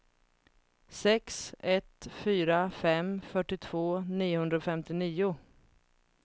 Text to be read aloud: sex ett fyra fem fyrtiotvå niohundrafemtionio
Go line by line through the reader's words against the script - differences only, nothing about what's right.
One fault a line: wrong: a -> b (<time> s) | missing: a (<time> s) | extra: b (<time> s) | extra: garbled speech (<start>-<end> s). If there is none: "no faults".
no faults